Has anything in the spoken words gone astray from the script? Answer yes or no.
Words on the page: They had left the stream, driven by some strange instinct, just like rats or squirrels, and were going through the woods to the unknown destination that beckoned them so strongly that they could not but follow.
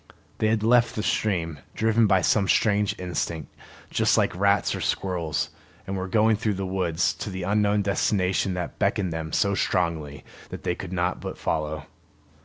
no